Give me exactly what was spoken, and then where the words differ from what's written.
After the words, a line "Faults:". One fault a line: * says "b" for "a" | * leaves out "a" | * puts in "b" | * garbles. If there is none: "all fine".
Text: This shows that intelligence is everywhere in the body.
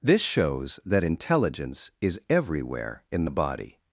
This shows that intelligence is everywhere in the body.
Faults:
all fine